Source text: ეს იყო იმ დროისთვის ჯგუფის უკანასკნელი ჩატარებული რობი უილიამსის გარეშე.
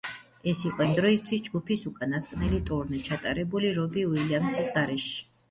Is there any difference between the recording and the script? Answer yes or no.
yes